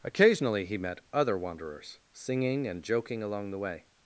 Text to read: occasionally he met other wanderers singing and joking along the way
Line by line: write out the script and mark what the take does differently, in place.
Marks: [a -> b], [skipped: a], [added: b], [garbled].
occasionally he met other wanderers singing and joking along the way